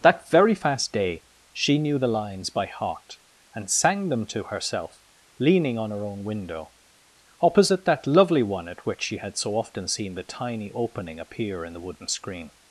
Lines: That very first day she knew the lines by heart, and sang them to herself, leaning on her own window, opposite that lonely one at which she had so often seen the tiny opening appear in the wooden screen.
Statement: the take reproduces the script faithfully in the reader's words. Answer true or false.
false